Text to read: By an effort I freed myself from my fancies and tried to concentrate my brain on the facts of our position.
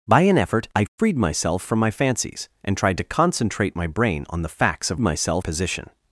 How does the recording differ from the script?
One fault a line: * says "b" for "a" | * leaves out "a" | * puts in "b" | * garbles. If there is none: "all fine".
* says "myself" for "our"